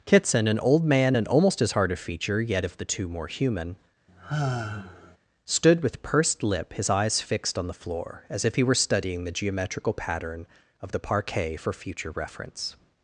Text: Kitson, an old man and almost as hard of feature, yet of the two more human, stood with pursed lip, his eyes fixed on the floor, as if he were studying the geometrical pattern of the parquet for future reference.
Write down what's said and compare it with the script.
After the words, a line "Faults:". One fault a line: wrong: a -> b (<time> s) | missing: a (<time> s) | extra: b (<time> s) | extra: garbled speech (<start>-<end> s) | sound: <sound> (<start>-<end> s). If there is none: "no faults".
Kitson, an old man and almost as hard of feature, yet of the two more human, stood with pursed lip, his eyes fixed on the floor, as if he were studying the geometrical pattern of the parquet for future reference.
Faults:
sound: sigh (4.1-5.2 s)